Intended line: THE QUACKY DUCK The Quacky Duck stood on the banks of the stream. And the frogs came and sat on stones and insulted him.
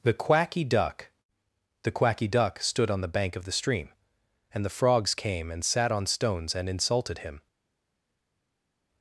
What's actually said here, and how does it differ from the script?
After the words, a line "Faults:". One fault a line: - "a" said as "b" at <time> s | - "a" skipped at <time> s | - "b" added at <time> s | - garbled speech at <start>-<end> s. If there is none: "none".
THE QUACKY DUCK The Quacky Duck stood on the bank of the stream. And the frogs came and sat on stones and insulted him.
Faults:
- "banks" said as "bank" at 3.1 s